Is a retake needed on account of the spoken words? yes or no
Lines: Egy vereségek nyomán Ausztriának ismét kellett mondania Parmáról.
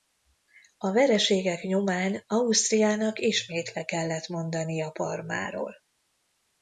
yes